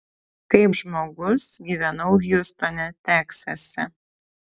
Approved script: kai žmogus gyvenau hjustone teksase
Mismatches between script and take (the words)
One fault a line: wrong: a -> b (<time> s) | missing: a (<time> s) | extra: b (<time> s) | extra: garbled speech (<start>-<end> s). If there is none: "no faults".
no faults